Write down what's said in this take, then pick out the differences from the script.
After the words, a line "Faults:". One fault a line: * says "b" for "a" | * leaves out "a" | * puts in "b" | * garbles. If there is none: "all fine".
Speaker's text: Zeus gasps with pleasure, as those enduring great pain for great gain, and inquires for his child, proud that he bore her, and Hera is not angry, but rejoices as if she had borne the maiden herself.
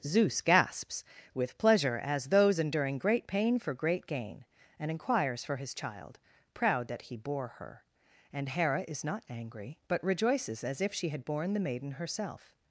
Zeus gasps with pleasure, as those enduring great pain for great gain, and inquires for his child, proud that he bore her, and Hera is not angry, but rejoices as if she had borne the maiden herself.
Faults:
all fine